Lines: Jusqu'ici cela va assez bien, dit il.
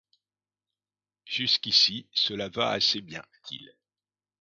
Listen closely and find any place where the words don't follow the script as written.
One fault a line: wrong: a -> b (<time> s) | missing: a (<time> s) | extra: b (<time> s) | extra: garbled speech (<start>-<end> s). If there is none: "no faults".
missing: dit (3.2 s)